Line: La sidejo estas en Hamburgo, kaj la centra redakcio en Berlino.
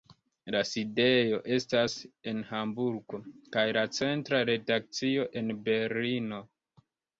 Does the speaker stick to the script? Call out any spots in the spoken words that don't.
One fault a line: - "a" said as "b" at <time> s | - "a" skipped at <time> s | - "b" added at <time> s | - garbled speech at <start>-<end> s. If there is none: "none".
none